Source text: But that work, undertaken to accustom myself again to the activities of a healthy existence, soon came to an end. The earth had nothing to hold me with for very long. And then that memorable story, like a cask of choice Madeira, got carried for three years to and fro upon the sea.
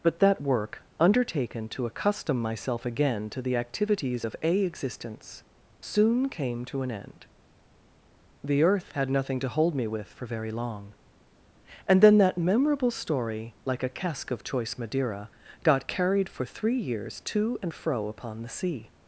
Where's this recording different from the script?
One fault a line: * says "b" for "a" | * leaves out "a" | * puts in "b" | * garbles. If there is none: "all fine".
* leaves out "healthy"